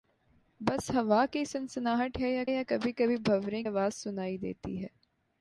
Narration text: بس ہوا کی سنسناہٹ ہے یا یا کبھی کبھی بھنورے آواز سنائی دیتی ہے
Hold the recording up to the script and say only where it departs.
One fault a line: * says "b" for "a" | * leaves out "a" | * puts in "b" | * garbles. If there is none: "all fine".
all fine